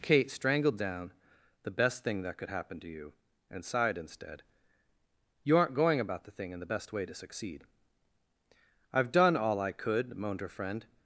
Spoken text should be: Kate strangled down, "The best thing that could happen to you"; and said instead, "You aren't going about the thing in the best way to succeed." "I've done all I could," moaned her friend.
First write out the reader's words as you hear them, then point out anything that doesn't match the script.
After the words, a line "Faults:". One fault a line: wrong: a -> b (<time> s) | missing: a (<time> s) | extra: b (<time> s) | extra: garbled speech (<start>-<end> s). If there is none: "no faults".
Kate strangled down, "The best thing that could happen to you"; and sighed instead, "You aren't going about the thing in the best way to succeed." "I've done all I could," moaned her friend.
Faults:
wrong: said -> sighed (3.6 s)